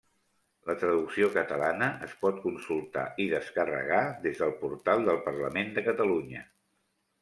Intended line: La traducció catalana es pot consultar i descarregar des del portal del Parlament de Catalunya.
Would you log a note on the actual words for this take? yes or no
no